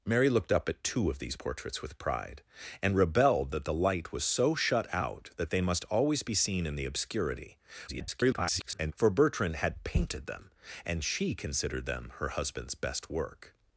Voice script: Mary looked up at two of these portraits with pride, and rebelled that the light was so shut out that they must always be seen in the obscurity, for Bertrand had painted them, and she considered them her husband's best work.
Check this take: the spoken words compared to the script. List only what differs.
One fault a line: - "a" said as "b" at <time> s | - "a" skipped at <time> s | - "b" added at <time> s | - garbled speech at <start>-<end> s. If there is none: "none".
- garbled speech at 7.9-8.9 s